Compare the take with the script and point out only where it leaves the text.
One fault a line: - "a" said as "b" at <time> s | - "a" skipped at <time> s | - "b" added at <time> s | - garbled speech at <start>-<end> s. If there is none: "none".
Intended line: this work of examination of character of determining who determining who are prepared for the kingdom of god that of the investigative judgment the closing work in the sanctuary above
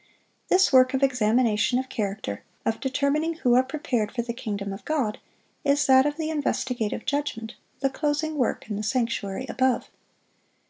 - "determining who" skipped at 3.5 s
- "is" added at 5.6 s